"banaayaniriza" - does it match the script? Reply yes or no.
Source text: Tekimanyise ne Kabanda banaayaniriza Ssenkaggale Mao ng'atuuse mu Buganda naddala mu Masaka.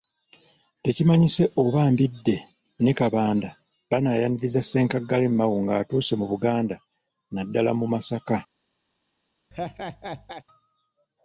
yes